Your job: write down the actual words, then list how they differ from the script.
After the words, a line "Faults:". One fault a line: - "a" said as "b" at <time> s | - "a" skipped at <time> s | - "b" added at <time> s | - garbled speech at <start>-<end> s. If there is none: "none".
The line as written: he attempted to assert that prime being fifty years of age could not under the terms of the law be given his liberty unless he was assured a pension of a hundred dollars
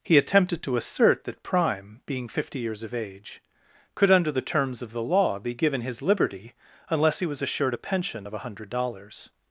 he attempted to assert that prime being fifty years of age could under the terms of the law be given his liberty unless he was assured a pension of a hundred dollars
Faults:
- "not" skipped at 4.1 s